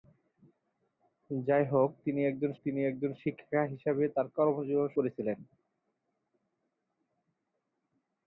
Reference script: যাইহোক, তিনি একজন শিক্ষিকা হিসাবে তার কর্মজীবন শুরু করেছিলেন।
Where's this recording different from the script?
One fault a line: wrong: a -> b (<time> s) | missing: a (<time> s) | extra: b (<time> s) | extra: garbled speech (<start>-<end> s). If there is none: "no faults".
extra: তিনি একজন (2.6 s)
missing: শুরু (4.9 s)